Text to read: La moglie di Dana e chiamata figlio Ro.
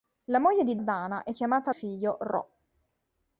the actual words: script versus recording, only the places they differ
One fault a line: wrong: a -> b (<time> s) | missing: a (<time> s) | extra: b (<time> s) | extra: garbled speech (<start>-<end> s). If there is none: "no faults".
no faults